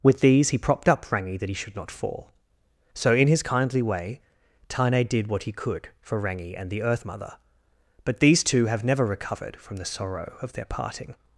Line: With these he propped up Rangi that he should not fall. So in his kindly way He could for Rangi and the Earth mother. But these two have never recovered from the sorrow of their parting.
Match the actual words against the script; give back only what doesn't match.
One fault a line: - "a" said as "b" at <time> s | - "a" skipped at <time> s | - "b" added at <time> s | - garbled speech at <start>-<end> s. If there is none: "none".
- "Tane did what" added at 4.7 s